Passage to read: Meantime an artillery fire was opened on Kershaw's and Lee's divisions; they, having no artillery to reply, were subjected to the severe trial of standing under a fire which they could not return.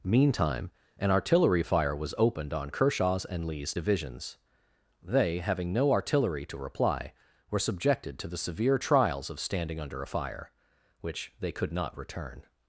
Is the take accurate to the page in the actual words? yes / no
no